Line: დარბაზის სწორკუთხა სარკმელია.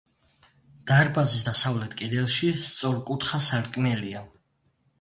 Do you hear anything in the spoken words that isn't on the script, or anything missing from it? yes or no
yes